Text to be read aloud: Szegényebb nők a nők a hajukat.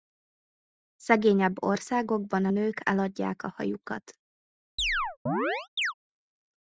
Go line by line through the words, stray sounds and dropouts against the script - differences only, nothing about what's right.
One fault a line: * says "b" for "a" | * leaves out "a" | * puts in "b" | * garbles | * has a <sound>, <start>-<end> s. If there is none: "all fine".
* says "országokban" for "nők"
* puts in "eladják"
* has a chirp, 4.8-5.9 s